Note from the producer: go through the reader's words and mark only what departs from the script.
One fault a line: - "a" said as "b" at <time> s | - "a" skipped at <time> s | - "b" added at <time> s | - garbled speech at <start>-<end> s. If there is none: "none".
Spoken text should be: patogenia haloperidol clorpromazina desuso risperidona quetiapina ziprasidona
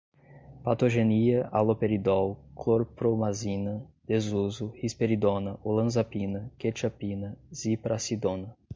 - "olanzapina" added at 5.6 s